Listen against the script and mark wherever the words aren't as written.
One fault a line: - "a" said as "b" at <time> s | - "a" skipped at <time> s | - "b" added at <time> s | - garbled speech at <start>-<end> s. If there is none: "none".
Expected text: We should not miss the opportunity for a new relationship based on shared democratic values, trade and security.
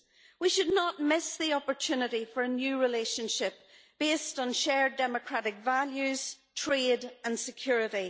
none